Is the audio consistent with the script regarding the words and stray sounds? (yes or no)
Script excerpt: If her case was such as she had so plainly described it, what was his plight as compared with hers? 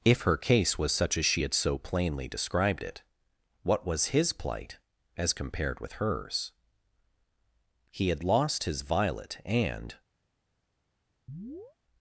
no